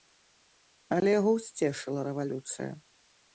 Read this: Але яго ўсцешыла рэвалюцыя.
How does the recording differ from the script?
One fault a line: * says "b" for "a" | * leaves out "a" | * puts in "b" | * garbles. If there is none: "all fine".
all fine